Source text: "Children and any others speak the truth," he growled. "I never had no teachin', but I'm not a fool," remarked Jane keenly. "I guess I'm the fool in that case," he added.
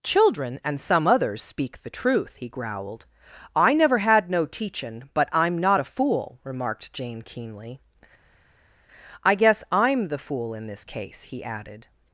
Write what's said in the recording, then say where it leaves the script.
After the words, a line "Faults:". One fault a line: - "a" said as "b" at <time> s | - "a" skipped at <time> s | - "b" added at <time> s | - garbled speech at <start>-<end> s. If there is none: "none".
"Children and some others speak the truth," he growled. "I never had no teachin', but I'm not a fool," remarked Jane keenly. "I guess I'm the fool in this case," he added.
Faults:
- "any" said as "some" at 0.8 s
- "that" said as "this" at 10.7 s